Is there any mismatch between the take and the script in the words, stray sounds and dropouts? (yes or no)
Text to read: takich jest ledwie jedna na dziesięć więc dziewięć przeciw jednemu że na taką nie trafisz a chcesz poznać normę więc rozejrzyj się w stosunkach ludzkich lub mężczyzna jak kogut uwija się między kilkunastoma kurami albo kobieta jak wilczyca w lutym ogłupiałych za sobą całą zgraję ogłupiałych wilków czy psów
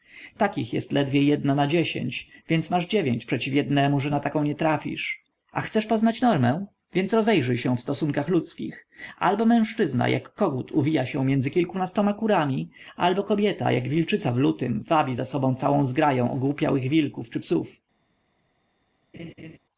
yes